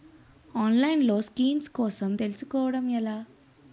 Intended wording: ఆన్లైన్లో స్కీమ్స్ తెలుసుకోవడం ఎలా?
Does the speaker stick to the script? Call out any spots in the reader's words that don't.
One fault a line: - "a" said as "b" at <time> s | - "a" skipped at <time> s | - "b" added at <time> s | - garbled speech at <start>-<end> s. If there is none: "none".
- "కోసం" added at 1.7 s